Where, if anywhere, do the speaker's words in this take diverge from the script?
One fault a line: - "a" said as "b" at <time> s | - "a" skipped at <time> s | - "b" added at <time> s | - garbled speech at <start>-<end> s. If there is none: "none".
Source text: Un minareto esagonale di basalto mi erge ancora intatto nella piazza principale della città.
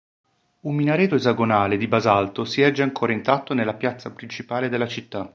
- "mi" said as "si" at 2.5 s